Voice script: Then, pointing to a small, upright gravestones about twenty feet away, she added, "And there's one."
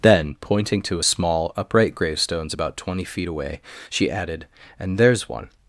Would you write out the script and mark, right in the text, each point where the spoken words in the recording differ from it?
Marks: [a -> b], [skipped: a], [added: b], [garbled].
Then, pointing to a small, upright gravestones about twenty feet away, she added, "And there's one."